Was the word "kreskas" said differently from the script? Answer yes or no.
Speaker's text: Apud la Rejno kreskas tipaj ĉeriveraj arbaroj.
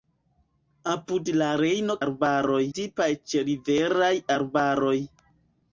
yes